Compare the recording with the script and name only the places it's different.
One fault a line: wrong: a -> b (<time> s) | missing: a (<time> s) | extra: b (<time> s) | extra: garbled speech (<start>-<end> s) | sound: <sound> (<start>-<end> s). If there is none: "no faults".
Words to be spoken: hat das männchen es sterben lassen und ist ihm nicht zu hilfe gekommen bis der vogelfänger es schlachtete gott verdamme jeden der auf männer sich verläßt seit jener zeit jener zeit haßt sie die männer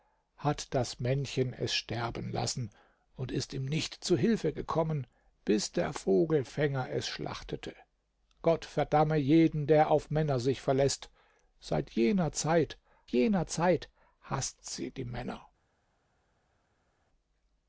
no faults